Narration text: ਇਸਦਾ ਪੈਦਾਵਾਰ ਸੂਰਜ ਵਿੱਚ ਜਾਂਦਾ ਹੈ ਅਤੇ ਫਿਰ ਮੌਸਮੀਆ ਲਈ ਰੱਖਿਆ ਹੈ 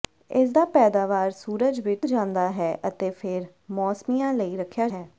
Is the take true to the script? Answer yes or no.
yes